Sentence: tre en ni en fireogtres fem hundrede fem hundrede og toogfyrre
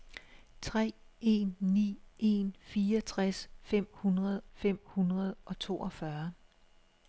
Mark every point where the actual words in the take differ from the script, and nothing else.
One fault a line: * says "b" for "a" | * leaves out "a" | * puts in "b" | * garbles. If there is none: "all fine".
all fine